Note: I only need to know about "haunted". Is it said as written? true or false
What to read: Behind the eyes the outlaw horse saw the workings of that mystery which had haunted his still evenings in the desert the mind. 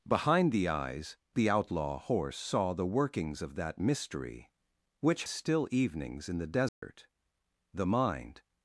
false